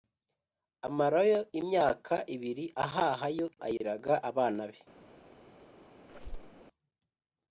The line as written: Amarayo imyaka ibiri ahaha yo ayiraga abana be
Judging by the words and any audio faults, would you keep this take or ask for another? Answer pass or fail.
fail